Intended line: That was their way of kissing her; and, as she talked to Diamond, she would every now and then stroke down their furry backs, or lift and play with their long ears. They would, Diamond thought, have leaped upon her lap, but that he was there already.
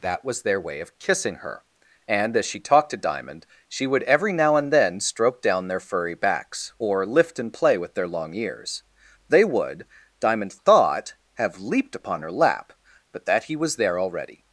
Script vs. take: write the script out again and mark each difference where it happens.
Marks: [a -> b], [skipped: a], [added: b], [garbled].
That was their way of kissing her; and, as she talked to Diamond, she would every now and then stroke down their furry backs, or lift and play with their long ears. They would, Diamond thought, have leaped upon her lap, but that he was there already.